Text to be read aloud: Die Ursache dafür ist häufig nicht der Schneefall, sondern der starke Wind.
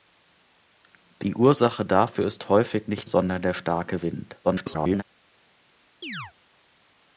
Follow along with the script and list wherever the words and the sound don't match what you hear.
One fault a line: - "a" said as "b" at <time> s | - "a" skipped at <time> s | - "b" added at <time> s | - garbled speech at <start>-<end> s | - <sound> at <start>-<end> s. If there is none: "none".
- "der Schneefall" skipped at 3.1 s
- garbled speech at 4.4-5.0 s
- chirp at 6.0-6.3 s